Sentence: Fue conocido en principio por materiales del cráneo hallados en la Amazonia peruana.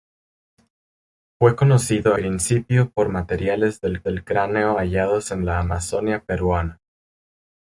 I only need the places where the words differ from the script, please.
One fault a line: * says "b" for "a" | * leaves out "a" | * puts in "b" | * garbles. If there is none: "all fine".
* leaves out "en"
* puts in "del"